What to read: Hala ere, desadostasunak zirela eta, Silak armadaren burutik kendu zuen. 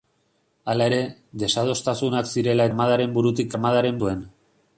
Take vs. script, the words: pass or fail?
fail